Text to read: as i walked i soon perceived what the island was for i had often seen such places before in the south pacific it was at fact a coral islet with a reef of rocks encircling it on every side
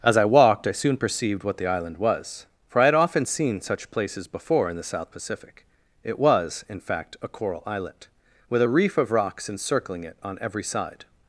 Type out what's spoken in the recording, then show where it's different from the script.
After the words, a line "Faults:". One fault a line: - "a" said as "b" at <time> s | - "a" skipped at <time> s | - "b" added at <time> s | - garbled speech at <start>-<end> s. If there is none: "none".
as i walked i soon perceived what the island was for i had often seen such places before in the south pacific it was in fact a coral islet with a reef of rocks encircling it on every side
Faults:
- "at" said as "in" at 6.7 s